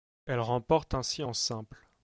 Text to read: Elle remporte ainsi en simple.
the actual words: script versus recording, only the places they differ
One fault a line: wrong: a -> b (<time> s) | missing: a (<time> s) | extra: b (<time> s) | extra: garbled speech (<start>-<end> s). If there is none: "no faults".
no faults